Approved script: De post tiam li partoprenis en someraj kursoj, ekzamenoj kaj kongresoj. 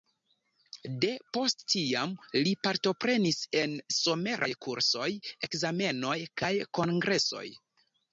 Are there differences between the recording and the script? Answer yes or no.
no